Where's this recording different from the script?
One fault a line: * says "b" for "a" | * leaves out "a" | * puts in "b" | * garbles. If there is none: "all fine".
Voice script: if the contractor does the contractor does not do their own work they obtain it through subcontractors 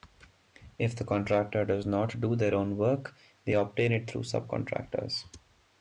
* leaves out "the contractor does"